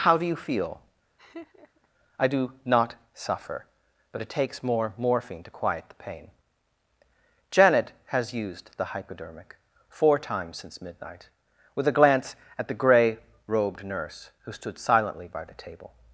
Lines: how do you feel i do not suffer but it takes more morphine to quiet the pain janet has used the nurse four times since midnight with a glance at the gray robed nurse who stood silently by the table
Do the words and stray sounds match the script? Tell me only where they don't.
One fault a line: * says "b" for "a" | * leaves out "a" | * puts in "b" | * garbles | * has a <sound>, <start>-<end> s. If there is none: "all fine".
* has a laugh, 1.2-1.9 s
* says "hypodermic" for "nurse"